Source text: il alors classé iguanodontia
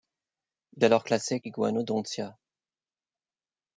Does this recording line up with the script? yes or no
yes